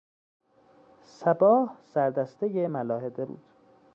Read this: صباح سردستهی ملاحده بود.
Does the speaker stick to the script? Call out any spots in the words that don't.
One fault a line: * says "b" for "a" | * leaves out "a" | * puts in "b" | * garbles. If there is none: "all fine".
all fine